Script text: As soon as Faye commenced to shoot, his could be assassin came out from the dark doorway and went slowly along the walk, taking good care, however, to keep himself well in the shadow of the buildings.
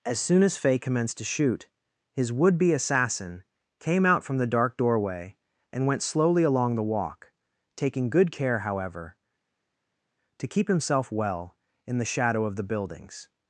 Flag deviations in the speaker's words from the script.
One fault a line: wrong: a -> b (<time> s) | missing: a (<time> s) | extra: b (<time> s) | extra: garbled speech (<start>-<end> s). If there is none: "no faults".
wrong: could -> would (2.3 s)